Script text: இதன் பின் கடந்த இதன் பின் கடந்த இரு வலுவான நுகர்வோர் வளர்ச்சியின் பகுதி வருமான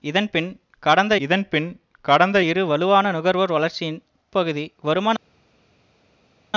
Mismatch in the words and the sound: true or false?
false